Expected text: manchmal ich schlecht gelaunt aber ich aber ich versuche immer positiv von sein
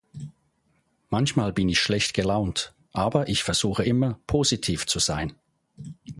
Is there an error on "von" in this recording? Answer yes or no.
yes